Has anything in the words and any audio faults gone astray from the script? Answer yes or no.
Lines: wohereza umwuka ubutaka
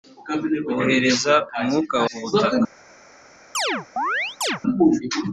yes